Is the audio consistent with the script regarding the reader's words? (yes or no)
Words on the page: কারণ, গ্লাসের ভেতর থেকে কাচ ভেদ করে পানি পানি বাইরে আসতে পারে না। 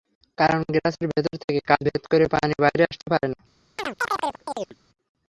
no